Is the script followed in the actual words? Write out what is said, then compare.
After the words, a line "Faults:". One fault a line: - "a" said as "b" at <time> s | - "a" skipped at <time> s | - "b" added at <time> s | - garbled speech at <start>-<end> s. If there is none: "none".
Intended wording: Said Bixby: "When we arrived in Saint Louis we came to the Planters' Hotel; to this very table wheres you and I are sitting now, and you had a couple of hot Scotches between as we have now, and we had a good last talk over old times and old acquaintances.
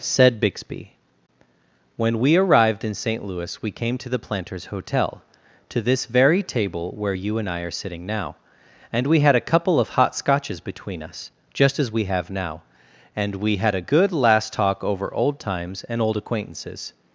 Said Bixby: "When we arrived in Saint Louis we came to the Planters' Hotel; to this very table where you and I are sitting now, and we had a couple of hot Scotches between us, just as we have now, and we had a good last talk over old times and old acquaintances.
Faults:
- "wheres" said as "where" at 7.0 s
- "you" said as "we" at 9.1 s
- "us just" added at 11.0 s